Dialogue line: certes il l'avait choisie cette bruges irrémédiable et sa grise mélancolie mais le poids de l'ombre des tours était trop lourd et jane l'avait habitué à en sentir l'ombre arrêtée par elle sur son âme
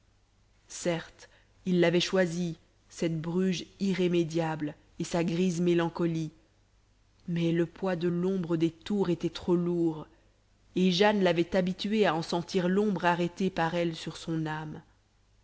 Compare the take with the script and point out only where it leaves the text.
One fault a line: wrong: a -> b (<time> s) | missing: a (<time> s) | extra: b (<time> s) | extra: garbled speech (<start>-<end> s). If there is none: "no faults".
no faults